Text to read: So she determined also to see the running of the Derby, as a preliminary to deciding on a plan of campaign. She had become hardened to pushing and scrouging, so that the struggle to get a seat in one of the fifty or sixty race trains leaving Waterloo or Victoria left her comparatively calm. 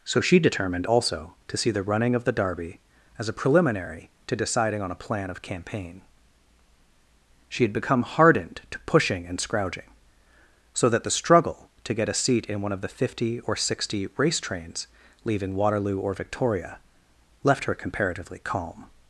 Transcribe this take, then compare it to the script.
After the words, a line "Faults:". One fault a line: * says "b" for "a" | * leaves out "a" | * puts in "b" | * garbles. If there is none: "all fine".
So she determined also to see the running of the Derby, as a preliminary to deciding on a plan of campaign. She had become hardened to pushing and scrouging, so that the struggle to get a seat in one of the fifty or sixty race trains leaving Waterloo or Victoria left her comparatively calm.
Faults:
all fine